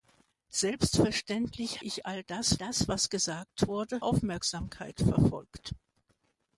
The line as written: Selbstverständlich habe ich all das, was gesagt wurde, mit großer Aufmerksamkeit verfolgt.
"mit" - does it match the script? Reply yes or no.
no